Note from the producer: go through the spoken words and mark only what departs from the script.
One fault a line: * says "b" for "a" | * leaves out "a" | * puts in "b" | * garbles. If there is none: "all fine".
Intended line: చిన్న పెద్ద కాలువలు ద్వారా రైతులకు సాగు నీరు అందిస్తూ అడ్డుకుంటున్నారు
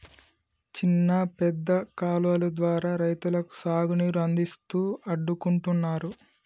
all fine